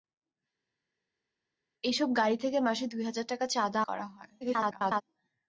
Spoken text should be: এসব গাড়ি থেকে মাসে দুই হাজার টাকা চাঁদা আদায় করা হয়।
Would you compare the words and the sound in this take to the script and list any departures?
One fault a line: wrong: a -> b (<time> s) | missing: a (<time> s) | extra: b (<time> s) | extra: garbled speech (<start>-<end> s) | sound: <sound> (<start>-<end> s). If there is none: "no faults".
missing: আদায় (3.8 s)
extra: garbled speech (4.4-5.0 s)